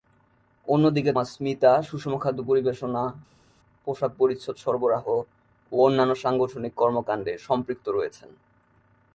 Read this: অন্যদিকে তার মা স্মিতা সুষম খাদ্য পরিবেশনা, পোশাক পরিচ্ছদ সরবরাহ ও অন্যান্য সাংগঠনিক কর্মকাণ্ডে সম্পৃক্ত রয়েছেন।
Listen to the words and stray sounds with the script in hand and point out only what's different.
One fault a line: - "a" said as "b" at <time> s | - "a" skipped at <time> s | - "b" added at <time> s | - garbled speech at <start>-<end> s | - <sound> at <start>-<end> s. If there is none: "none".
- "তার" skipped at 1.1 s